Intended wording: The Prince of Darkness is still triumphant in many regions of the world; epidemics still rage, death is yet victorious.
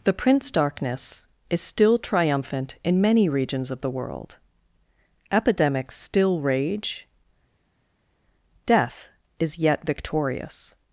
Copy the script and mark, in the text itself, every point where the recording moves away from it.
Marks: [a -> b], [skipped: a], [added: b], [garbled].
The Prince [skipped: of] Darkness is still triumphant in many regions of the world; epidemics still rage, death is yet victorious.